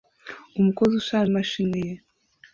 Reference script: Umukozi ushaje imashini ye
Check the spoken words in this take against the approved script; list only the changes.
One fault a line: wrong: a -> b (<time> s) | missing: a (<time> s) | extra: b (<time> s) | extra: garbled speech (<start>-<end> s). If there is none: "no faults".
no faults